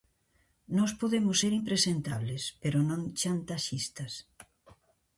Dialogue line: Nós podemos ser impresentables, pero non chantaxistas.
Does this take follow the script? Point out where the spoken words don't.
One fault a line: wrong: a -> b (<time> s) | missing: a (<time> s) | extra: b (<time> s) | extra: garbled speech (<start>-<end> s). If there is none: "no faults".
no faults